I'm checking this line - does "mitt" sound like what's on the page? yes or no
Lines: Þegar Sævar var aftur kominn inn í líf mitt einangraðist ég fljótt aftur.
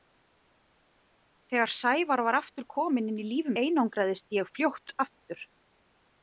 no